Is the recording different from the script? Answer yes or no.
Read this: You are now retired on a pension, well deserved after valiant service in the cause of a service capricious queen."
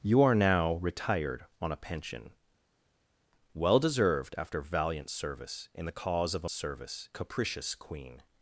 no